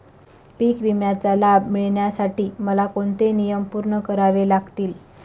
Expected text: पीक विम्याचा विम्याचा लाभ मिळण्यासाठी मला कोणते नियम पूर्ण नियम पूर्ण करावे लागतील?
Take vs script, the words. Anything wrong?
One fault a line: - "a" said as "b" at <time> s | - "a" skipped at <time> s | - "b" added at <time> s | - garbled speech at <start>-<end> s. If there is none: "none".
- "विम्याचा" skipped at 1.3 s
- "नियम पूर्ण" skipped at 4.0 s